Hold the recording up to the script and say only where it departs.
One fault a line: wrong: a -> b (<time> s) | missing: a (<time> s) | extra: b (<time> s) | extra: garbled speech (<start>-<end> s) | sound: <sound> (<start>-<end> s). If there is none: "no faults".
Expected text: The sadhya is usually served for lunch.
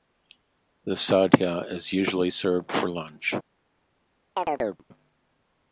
sound: chirp (4.4-4.8 s)